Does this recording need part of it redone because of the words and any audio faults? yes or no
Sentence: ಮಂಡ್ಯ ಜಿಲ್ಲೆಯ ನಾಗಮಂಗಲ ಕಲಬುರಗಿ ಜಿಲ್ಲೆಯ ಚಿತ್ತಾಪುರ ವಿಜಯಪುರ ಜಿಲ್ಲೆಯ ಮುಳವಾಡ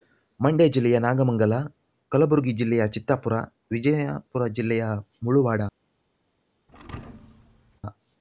yes